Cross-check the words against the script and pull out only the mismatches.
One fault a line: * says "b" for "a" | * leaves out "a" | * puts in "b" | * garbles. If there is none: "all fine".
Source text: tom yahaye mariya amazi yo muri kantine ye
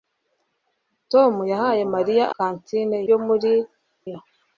* says "kantine" for "amazi"
* leaves out "kantine"